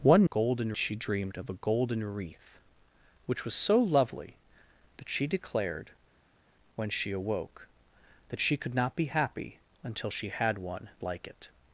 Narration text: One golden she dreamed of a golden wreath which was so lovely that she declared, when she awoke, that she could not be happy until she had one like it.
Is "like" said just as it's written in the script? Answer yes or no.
yes